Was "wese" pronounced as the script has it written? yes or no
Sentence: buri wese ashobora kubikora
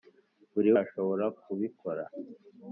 no